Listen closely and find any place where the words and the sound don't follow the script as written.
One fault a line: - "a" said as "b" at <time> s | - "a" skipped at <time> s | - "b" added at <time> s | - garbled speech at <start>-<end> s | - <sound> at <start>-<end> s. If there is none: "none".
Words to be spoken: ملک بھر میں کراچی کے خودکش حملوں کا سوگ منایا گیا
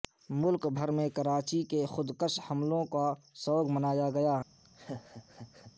- laugh at 4.6-5.7 s